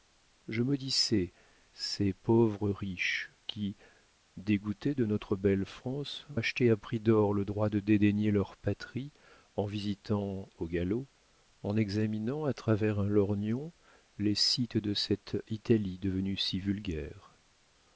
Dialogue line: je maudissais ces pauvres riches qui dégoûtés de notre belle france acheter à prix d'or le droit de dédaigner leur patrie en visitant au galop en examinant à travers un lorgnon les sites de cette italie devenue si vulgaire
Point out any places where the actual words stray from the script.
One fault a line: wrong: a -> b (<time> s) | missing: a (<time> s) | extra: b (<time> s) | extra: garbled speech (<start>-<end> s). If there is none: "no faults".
no faults